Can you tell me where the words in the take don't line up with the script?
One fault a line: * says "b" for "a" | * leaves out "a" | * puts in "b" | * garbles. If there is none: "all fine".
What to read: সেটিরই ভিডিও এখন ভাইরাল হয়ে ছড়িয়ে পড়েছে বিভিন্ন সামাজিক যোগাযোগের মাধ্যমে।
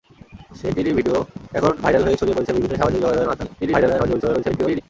* garbles